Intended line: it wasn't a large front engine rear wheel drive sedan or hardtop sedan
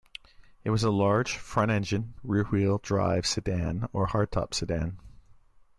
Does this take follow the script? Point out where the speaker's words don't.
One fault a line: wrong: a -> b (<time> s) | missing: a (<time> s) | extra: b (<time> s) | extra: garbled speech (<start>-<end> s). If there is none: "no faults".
wrong: wasn't -> was (0.7 s)